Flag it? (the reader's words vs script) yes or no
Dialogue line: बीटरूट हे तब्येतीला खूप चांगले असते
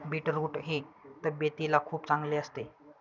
no